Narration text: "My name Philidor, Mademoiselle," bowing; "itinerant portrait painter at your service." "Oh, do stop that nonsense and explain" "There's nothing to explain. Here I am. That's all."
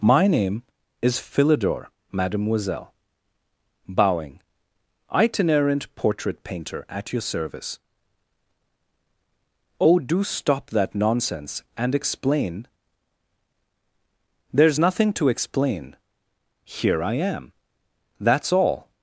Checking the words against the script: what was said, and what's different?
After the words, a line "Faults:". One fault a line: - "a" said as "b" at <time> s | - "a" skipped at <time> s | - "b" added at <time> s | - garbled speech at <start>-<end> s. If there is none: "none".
"My name is Philidor, Mademoiselle," bowing; "itinerant portrait painter at your service." "Oh, do stop that nonsense and explain" "There's nothing to explain. Here I am. That's all."
Faults:
- "is" added at 1.0 s